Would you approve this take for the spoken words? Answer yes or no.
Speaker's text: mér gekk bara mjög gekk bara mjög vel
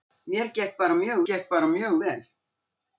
yes